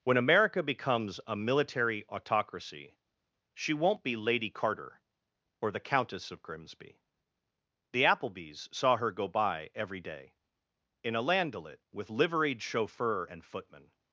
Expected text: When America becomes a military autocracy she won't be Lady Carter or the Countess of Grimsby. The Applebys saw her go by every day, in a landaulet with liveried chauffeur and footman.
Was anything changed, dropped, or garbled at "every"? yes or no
no